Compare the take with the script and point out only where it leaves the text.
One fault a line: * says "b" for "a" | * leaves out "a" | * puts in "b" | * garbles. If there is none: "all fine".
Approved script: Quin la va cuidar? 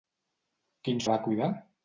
all fine